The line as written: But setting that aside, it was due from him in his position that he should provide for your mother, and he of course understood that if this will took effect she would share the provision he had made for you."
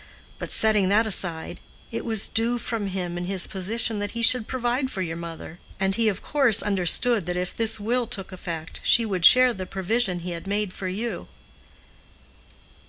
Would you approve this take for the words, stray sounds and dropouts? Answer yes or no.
yes